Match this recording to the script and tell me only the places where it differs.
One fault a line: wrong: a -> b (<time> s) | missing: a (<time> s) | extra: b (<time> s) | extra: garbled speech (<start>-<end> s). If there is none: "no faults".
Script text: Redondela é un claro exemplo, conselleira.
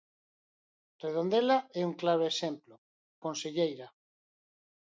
no faults